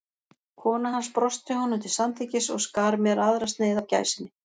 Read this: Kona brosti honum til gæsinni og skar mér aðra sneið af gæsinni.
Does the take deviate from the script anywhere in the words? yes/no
yes